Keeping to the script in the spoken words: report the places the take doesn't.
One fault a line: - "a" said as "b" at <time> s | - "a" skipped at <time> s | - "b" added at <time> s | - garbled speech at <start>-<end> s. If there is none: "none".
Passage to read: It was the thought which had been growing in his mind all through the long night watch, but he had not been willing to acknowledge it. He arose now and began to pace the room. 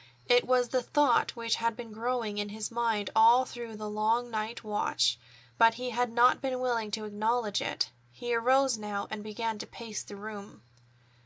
none